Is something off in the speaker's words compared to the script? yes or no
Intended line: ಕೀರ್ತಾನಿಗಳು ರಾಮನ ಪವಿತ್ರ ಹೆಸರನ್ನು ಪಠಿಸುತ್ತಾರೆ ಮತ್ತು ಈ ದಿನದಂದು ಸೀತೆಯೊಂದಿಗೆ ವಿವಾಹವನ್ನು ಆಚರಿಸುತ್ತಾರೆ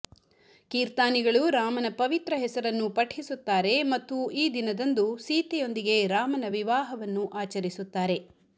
yes